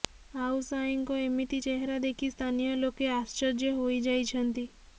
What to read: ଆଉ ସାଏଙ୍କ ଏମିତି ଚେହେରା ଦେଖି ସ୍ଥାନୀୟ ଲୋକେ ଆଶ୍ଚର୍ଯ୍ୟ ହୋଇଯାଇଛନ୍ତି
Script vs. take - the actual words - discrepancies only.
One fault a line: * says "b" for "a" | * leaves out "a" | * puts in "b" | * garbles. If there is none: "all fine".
all fine